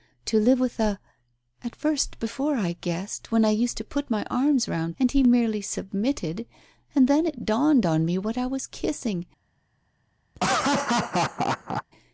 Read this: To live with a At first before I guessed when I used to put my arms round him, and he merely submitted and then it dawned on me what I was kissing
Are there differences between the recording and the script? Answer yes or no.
yes